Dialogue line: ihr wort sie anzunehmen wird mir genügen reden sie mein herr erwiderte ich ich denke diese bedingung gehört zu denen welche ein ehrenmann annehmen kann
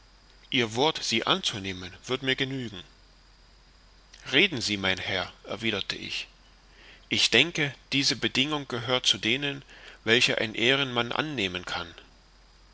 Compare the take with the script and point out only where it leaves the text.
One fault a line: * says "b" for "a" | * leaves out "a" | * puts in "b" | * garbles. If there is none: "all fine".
all fine